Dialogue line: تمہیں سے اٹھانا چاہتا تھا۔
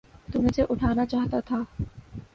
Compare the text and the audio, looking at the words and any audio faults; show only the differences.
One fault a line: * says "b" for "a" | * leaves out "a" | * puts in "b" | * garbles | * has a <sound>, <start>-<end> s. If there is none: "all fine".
all fine